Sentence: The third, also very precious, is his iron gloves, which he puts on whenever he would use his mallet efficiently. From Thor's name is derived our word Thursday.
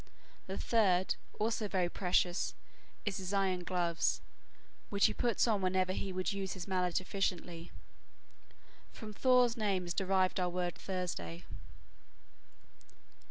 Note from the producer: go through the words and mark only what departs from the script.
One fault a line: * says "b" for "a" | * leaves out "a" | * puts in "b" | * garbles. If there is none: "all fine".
all fine